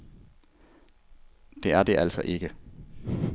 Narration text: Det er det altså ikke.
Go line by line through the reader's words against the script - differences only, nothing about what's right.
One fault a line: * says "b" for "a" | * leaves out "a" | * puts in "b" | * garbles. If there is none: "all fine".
all fine